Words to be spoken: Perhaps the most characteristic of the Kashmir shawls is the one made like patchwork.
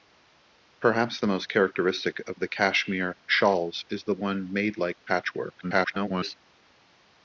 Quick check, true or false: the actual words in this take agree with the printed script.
false